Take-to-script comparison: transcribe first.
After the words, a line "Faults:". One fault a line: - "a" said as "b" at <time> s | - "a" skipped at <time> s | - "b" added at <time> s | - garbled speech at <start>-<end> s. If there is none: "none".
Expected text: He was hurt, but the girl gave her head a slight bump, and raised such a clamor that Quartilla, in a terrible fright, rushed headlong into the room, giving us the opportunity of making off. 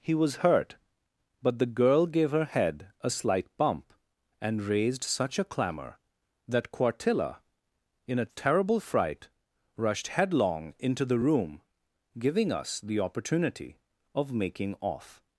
He was hurt, but the girl gave her head a slight bump, and raised such a clamor that Quartilla, in a terrible fright, rushed headlong into the room, giving us the opportunity of making off.
Faults:
none